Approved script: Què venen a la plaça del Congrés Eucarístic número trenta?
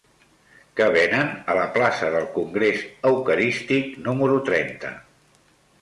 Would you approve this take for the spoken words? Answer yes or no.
yes